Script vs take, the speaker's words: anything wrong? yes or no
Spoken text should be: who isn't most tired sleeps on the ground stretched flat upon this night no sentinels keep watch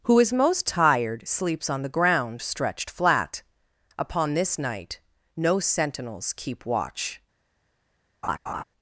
yes